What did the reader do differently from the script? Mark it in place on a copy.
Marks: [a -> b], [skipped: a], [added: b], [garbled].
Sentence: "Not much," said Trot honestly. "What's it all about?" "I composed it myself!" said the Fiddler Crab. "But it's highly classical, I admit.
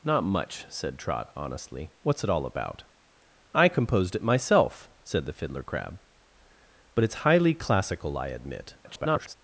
"Not much," said Trot honestly. "What's it all about?" "I composed it myself!" said the Fiddler Crab. "But it's highly classical, I admit. [garbled]